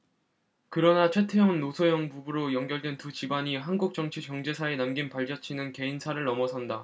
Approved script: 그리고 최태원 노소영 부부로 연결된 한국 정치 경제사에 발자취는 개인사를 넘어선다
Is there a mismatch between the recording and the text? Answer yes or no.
yes